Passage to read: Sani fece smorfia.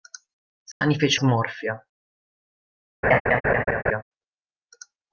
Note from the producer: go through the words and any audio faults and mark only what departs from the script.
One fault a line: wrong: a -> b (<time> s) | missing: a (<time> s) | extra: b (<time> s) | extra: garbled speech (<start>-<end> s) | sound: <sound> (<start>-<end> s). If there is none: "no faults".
sound: dropout (0.7-0.8 s)
sound: laugh (3.0-4.0 s)